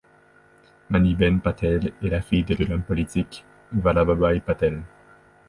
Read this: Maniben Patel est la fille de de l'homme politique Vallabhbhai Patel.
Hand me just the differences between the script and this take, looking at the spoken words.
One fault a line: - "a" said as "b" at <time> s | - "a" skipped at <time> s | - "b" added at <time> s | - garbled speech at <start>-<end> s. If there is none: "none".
none